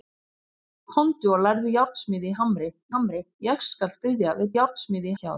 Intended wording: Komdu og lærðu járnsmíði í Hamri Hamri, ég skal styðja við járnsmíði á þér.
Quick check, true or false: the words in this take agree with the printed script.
true